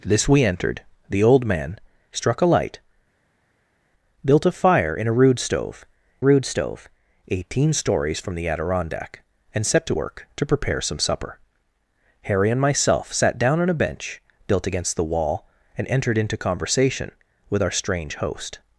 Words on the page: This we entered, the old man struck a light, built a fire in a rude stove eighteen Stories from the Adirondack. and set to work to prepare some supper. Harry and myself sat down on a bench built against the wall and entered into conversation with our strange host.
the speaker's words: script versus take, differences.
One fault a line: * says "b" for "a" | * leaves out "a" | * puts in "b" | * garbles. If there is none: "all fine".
* puts in "rude stove"